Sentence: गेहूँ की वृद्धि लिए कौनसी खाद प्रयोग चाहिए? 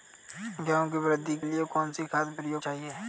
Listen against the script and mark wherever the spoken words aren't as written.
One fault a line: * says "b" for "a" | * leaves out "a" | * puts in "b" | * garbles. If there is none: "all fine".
all fine